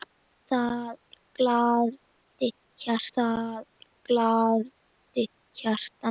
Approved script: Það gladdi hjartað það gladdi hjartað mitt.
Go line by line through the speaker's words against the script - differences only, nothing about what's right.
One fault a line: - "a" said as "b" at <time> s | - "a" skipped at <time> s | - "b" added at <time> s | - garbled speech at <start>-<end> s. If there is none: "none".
none